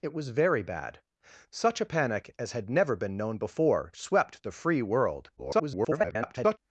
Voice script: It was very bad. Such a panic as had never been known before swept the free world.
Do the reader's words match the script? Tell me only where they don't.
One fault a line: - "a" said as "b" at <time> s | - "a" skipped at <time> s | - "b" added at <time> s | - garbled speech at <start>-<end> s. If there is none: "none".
- garbled speech at 5.4-6.6 s